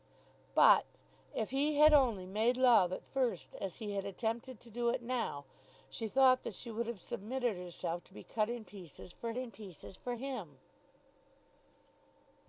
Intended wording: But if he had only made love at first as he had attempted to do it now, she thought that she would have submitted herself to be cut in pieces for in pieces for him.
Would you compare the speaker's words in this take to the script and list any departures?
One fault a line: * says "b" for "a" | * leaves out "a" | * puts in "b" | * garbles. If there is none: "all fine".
all fine